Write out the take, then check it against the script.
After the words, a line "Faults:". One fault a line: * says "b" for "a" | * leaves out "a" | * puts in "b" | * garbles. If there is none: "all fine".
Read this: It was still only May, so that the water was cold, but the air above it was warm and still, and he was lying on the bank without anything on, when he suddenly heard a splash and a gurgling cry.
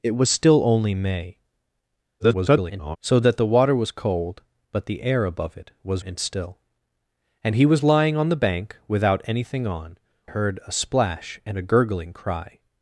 It was still only May, [garbled] so that the water was cold, but the air above it was and still, and he was lying on the bank without anything on, heard a splash and a gurgling cry.
Faults:
* garbles
* leaves out "warm"
* leaves out "when he suddenly"